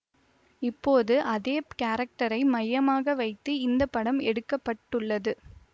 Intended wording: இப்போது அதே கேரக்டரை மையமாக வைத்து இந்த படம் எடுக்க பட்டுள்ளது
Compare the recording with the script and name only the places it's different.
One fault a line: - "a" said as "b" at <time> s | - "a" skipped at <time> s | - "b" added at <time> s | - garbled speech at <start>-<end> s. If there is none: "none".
none